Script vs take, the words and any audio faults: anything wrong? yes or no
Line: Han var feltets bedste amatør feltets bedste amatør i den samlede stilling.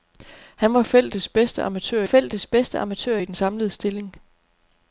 no